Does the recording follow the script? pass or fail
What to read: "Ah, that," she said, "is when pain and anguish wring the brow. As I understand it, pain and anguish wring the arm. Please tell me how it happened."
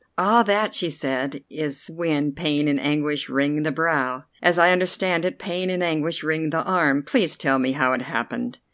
pass